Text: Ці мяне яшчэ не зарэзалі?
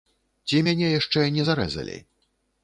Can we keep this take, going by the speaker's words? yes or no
yes